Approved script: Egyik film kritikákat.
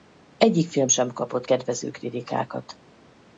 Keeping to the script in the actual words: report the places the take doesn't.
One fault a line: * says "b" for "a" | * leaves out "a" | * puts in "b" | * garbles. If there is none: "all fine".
* puts in "sem kapott kedvező"